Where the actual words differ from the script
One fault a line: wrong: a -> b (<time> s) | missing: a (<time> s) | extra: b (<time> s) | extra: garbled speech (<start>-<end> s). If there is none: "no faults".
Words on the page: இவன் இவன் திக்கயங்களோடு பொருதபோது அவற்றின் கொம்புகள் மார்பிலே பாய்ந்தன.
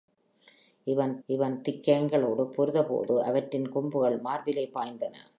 no faults